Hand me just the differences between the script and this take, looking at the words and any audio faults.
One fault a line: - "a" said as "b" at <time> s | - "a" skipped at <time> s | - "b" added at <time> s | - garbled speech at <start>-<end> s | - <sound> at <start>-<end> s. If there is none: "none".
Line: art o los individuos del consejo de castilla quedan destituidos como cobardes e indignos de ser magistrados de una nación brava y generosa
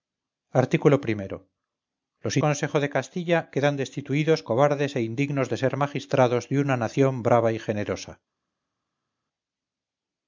- "individuos del" skipped at 2.4 s
- "como" skipped at 4.4 s